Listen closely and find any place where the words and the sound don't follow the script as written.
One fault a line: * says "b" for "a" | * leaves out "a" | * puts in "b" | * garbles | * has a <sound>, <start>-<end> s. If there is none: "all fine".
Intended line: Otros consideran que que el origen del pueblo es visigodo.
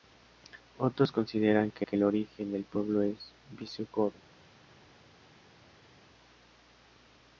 all fine